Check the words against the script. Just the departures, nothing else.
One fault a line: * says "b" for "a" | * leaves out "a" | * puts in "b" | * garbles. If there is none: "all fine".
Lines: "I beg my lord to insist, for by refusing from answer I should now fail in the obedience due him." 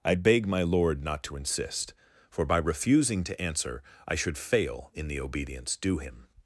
* puts in "not"
* says "to" for "from"
* leaves out "now"